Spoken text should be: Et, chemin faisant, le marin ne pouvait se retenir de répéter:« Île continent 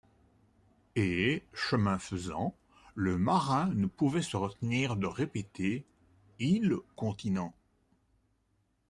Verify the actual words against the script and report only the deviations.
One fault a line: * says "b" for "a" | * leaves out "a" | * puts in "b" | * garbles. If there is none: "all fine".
all fine